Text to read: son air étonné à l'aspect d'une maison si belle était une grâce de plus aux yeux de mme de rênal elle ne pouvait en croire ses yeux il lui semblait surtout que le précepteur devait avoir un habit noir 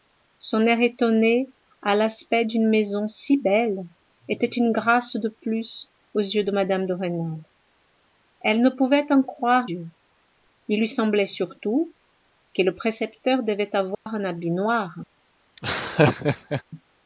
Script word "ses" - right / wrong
wrong